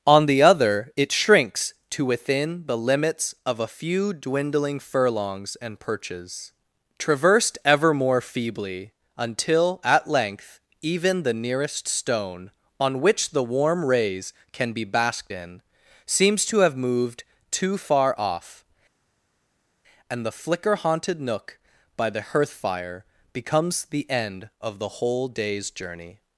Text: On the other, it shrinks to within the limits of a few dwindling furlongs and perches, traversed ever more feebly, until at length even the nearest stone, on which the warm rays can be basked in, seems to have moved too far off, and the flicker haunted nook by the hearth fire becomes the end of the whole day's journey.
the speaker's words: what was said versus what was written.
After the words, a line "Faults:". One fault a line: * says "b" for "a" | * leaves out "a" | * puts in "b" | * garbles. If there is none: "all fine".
On the other, it shrinks to within the limits of a few dwindling furlongs and perches, traversed ever more feebly, until at length even the nearest stone, on which the warm rays can be basked in, seems to have moved too far off, and the flicker haunted nook by the hearth fire becomes the end of the whole day's journey.
Faults:
all fine